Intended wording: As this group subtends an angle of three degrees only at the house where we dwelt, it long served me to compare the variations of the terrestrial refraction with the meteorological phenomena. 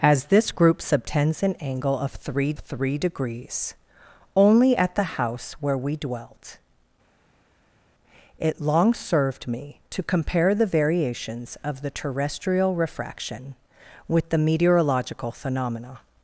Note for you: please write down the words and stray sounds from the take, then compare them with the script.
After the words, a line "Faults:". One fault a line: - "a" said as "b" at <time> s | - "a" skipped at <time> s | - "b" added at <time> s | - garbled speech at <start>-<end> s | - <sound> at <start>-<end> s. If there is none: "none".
As this group subtends an angle of three three degrees only at the house where we dwelt, it long served me to compare the variations of the terrestrial refraction with the meteorological phenomena.
Faults:
- "three" added at 2.6 s